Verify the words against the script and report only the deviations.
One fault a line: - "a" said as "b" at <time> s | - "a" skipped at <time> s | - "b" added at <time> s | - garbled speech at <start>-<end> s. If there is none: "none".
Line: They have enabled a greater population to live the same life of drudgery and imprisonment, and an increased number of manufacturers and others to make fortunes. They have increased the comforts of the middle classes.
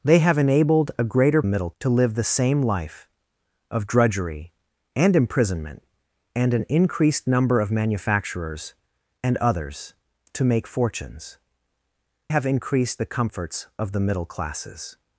- "population" said as "middle" at 1.4 s
- "They" skipped at 11.4 s